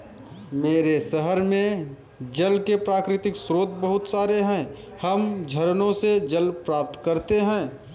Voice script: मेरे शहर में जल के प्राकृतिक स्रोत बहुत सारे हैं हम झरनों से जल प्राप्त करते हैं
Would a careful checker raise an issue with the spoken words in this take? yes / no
no